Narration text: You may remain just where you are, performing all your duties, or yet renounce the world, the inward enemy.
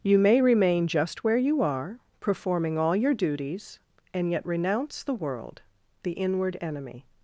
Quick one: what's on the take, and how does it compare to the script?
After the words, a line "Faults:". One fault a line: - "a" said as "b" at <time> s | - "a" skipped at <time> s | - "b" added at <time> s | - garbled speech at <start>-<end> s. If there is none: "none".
You may remain just where you are, performing all your duties, and yet renounce the world, the inward enemy.
Faults:
- "or" said as "and" at 4.2 s